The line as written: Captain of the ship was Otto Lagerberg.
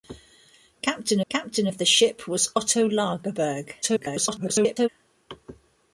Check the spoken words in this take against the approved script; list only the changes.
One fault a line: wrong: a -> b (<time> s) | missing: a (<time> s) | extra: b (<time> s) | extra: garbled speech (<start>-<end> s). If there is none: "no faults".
extra: captain (1.3 s)
extra: garbled speech (3.8-4.9 s)